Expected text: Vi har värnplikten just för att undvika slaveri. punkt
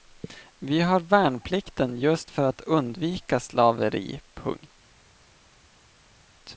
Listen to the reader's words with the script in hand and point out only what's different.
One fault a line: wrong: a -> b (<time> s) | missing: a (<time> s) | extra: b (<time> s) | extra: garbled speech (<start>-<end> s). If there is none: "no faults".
no faults